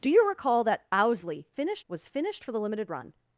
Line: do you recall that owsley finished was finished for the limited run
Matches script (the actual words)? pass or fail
pass